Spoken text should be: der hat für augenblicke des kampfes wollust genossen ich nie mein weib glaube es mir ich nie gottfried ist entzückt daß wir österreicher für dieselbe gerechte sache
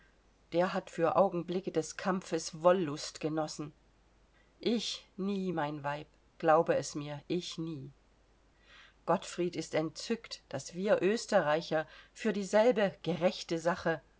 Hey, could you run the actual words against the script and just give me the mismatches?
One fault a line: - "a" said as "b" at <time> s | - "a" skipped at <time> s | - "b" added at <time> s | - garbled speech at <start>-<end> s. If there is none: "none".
none